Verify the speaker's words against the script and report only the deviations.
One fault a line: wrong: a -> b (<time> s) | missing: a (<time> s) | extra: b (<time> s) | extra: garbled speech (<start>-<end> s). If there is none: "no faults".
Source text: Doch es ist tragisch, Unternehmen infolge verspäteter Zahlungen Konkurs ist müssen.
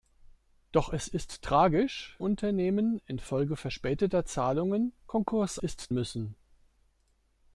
no faults